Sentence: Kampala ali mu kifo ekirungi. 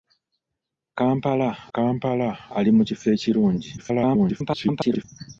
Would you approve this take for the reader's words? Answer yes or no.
no